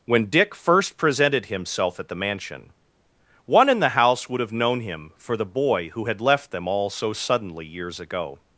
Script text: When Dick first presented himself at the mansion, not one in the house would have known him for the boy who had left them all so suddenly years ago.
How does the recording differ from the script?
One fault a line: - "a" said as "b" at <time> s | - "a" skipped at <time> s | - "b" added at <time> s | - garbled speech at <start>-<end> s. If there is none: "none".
- "not" skipped at 2.7 s